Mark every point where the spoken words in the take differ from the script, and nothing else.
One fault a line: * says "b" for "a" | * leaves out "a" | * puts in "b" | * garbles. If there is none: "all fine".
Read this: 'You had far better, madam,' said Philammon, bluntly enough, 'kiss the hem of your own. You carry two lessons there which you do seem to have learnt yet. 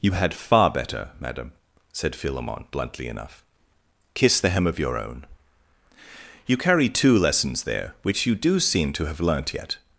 all fine